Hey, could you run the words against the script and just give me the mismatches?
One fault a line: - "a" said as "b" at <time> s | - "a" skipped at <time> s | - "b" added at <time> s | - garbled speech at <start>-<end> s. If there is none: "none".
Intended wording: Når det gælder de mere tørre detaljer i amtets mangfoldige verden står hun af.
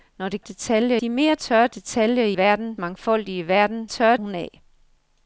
- "gælder" said as "detaljer" at 0.4 s
- "amtets" said as "verden" at 2.4 s
- "står" said as "tørre" at 3.8 s